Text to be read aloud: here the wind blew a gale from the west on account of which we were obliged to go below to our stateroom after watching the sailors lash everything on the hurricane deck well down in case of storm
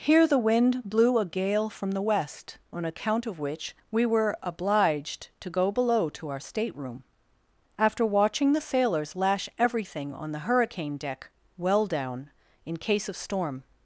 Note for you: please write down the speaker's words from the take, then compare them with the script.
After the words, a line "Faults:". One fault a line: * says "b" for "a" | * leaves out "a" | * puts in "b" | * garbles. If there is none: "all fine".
here the wind blew a gale from the west on account of which we were obliged to go below to our stateroom after watching the sailors lash everything on the hurricane deck well down in case of storm
Faults:
all fine